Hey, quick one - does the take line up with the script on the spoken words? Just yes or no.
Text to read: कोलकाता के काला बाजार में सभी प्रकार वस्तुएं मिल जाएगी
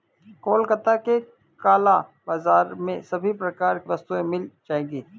yes